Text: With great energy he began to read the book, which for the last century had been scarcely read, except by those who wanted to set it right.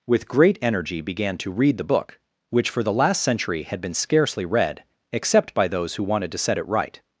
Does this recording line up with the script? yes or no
no